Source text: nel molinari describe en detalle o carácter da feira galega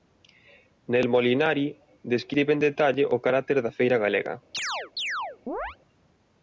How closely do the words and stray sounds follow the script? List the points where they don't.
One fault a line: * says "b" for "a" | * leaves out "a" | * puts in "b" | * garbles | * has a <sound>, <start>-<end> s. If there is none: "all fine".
* has a chirp, 4.5-5.8 s